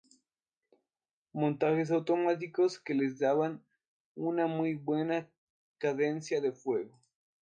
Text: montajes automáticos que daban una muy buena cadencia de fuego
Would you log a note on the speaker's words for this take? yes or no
yes